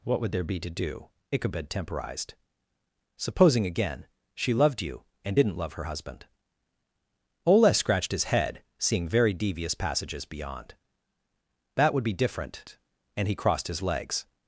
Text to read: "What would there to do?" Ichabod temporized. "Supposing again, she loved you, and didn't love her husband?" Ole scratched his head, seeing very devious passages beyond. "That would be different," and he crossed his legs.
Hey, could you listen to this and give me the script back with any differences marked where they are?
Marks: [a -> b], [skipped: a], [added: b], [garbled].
"What would there [added: be] to do?" Ichabod temporized. "Supposing again, she loved you, and didn't love her husband?" Ole scratched his head, seeing very devious passages beyond. "That would be different," and he crossed his legs.